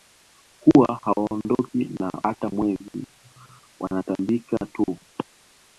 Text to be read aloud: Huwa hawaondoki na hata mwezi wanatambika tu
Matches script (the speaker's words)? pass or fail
pass